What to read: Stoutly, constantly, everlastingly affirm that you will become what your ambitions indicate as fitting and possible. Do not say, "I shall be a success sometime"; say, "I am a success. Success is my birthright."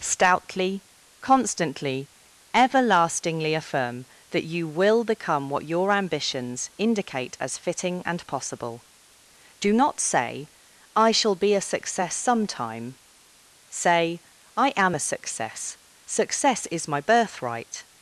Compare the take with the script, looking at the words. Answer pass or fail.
pass